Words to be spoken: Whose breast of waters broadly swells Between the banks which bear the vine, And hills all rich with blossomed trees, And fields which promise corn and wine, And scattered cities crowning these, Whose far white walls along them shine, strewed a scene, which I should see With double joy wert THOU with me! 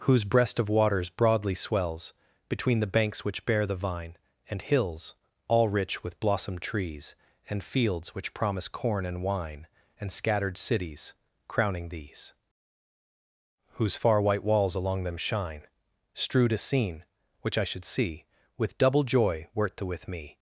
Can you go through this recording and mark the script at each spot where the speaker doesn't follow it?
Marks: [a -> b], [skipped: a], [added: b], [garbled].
Whose breast of waters broadly swells Between the banks which bear the vine, And hills all rich with blossomed trees, And fields which promise corn and wine, And scattered cities crowning these, Whose far white walls along them shine, strewed a scene, which I should see With double joy wert THOU with me!